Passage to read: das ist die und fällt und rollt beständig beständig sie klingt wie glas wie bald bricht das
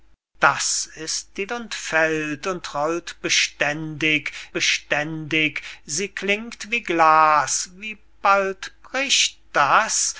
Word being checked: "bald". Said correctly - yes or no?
yes